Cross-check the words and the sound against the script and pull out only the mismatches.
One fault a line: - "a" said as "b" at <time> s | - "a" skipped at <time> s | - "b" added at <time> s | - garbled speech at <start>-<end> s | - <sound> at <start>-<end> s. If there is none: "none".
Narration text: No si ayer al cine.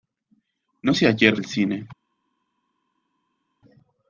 none